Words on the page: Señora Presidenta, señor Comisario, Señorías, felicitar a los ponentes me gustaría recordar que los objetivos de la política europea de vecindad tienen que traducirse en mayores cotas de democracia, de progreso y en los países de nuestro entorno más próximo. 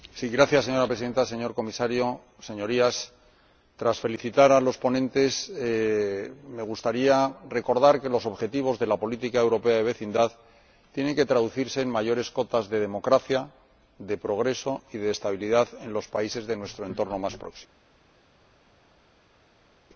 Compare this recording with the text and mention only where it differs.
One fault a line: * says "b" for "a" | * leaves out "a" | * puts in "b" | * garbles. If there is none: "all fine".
* puts in "tras"
* puts in "de estabilidad"